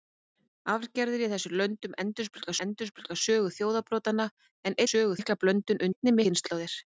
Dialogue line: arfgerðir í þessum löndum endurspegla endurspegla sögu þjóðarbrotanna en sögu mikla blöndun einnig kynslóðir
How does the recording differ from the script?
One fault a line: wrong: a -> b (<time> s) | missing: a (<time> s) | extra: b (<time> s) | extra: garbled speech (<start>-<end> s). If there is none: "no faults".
no faults